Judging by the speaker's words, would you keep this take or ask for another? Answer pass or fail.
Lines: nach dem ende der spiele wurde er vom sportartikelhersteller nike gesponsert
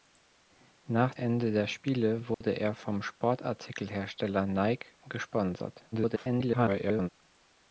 fail